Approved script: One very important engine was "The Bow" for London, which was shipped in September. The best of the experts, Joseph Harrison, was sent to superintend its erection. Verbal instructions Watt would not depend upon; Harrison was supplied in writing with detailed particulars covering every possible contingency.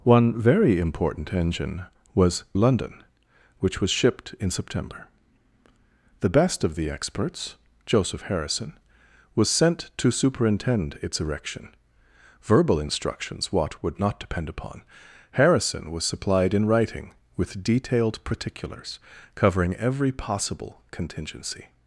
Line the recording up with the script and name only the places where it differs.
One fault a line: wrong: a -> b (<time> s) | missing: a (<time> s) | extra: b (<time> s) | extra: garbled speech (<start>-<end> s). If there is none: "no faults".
missing: The Bow for (2.5 s)